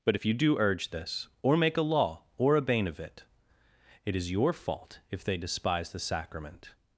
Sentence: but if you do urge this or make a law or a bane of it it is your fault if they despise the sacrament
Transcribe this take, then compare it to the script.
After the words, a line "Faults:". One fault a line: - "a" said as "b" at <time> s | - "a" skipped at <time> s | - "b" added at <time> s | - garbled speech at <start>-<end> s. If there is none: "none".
but if you do urge this or make a law or a bane of it it is your fault if they despise the sacrament
Faults:
none